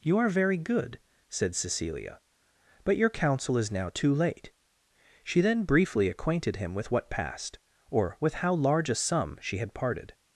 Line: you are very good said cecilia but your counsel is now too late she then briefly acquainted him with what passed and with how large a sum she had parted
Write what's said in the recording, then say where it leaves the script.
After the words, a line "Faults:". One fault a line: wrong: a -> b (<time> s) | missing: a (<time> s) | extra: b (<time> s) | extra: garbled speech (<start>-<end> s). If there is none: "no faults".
you are very good said cecilia but your counsel is now too late she then briefly acquainted him with what passed or with how large a sum she had parted
Faults:
wrong: and -> or (7.9 s)